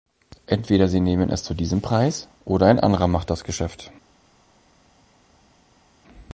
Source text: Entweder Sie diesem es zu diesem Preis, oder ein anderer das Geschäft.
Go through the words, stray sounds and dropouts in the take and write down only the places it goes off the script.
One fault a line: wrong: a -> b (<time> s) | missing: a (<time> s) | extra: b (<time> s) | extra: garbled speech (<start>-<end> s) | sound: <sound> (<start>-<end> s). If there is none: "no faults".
wrong: diesem -> nehmen (1.0 s)
extra: macht (3.1 s)